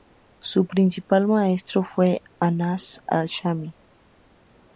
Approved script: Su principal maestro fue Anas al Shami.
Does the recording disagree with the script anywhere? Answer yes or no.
no